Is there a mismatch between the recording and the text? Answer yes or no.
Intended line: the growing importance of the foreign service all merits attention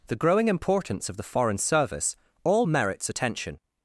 no